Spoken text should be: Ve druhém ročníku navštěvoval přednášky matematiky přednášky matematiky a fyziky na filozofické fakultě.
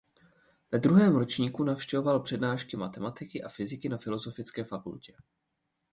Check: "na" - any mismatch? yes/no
no